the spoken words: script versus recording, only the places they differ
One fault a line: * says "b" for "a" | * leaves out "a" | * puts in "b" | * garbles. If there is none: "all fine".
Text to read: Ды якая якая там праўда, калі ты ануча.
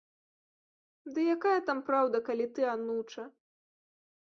* leaves out "якая"